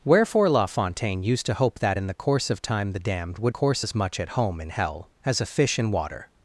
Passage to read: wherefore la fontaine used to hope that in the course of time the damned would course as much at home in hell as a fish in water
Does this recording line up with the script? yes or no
yes